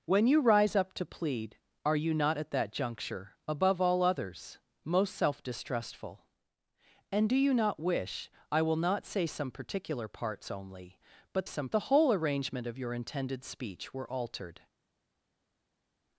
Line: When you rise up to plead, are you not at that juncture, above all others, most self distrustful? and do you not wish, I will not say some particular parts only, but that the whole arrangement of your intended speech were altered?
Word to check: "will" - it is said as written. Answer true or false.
true